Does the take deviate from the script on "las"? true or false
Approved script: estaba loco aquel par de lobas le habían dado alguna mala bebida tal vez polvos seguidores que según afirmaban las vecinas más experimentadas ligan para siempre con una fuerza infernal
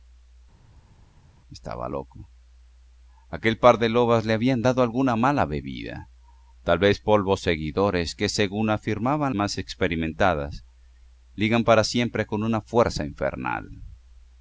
true